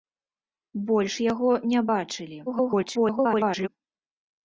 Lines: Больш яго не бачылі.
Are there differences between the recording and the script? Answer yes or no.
yes